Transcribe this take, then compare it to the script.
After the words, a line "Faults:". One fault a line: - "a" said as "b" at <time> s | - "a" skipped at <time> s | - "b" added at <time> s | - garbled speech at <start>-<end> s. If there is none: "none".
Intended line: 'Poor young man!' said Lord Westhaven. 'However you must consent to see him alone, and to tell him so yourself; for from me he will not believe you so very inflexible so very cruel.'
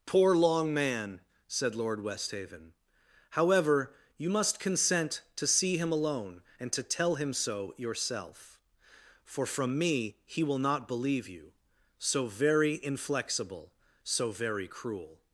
'Poor long man!' said Lord Westhaven. 'However you must consent to see him alone, and to tell him so yourself; for from me he will not believe you so very inflexible so very cruel.'
Faults:
- "young" said as "long" at 0.3 s